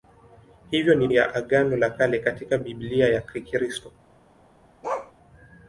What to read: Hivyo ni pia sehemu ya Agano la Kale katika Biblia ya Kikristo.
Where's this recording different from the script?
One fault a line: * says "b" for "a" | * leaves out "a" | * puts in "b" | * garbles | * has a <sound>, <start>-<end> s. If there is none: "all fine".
* leaves out "pia sehemu"
* has a bark, 4.8-5.1 s